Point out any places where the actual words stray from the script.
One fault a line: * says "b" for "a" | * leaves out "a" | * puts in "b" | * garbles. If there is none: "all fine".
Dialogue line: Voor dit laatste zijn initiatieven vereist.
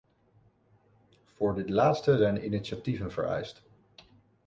all fine